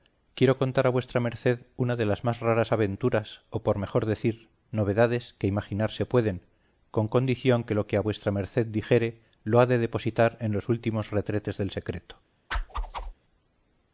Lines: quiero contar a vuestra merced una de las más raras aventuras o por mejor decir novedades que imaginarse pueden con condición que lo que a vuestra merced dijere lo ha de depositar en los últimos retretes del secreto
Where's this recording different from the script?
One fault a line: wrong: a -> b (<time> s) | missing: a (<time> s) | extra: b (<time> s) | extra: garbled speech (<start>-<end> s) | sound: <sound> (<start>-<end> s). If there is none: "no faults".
sound: whoosh (12.5-13.1 s)